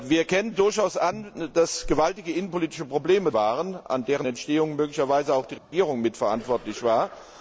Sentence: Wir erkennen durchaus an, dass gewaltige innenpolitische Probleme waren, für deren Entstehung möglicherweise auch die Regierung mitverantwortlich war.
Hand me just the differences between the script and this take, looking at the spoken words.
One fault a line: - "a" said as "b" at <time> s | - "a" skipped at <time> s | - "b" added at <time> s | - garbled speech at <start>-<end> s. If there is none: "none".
none